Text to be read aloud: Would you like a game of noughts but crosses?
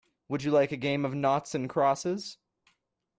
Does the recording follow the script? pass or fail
fail